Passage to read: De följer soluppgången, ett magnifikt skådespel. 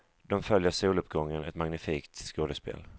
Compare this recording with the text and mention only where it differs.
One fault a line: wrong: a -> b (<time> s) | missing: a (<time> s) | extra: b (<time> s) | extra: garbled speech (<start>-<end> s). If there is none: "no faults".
no faults